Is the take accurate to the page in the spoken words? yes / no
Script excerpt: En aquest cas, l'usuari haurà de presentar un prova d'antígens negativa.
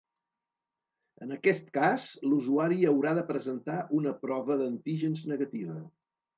no